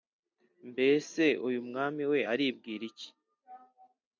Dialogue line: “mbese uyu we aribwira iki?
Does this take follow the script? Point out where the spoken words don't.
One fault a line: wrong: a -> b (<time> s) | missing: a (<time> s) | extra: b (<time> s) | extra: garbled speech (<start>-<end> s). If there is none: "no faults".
extra: mwami (1.7 s)